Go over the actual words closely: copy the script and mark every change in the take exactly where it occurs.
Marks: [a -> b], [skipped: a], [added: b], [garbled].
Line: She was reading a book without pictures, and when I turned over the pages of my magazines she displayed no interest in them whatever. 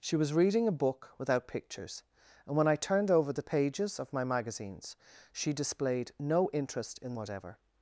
She was reading a book without pictures, and when I turned over the pages of my magazines she displayed no interest in [skipped: them] whatever.